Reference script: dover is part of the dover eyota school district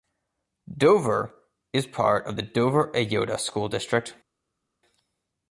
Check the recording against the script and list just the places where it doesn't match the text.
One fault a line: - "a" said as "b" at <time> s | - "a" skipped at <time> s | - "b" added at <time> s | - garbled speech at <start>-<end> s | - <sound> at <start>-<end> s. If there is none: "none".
none